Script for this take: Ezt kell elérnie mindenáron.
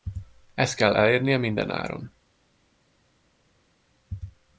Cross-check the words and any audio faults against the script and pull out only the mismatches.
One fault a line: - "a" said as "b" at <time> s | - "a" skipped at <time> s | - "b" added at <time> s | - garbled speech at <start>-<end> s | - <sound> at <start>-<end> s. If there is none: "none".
none